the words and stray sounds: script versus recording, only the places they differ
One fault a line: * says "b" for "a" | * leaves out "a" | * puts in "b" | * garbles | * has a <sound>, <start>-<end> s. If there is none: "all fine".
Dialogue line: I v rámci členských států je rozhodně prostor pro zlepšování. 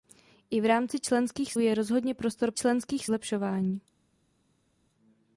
* leaves out "států"
* says "členských" for "pro"